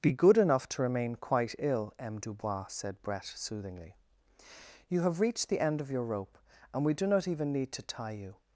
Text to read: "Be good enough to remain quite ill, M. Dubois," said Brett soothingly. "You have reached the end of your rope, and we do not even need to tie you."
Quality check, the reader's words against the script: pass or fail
pass